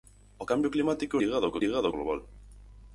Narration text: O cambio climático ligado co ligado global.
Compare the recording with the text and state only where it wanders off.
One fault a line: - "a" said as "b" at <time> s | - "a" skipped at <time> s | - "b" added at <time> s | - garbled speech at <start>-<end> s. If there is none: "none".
none